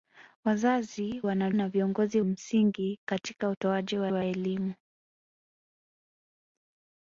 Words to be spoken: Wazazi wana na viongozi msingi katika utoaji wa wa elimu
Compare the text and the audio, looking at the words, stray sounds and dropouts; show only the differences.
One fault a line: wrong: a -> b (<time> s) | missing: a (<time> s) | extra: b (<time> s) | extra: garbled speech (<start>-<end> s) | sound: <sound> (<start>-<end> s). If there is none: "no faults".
no faults